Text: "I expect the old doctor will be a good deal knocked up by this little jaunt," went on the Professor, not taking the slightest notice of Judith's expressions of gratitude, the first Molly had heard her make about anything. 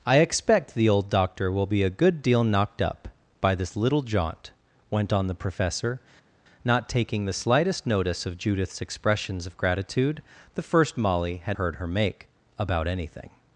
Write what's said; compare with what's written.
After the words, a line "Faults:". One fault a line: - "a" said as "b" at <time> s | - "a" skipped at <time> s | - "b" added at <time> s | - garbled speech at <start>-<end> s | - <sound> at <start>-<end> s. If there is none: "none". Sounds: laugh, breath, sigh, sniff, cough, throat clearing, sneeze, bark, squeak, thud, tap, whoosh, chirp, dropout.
"I expect the old doctor will be a good deal knocked up by this little jaunt," went on the Professor, not taking the slightest notice of Judith's expressions of gratitude, the first Molly had heard her make about anything.
Faults:
none